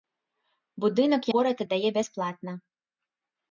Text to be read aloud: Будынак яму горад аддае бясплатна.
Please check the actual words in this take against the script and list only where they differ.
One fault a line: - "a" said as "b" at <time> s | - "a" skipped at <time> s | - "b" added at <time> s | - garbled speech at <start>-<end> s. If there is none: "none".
- "яму" skipped at 1.3 s